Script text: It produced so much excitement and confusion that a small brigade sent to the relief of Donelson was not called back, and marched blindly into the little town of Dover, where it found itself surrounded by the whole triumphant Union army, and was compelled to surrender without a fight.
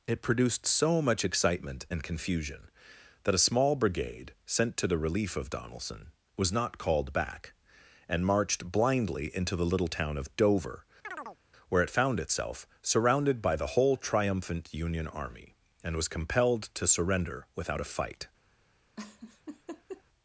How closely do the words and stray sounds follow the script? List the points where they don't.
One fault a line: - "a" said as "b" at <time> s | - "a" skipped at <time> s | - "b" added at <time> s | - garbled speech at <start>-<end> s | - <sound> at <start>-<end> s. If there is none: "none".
- chirp at 11.0-11.4 s
- laugh at 19.0-20.0 s